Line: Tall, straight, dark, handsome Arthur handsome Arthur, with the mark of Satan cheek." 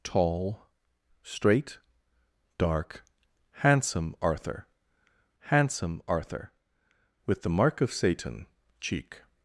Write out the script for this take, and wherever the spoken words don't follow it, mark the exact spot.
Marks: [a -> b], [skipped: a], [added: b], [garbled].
Tall, straight, dark, handsome Arthur handsome Arthur, with the mark of Satan cheek."